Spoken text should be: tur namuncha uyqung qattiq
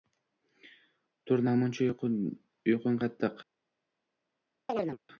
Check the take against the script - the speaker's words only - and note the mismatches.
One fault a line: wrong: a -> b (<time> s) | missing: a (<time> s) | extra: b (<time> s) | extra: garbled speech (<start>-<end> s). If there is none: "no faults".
no faults